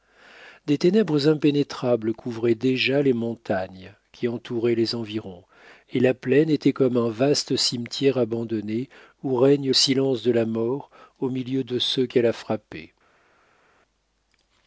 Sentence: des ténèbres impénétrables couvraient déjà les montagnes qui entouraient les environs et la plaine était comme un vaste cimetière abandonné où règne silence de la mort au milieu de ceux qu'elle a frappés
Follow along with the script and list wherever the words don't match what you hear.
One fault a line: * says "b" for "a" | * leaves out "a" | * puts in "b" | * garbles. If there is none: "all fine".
all fine